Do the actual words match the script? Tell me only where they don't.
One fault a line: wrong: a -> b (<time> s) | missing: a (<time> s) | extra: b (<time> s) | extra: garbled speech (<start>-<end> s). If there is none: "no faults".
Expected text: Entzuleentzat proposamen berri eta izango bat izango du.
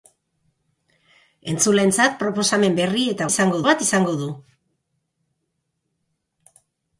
no faults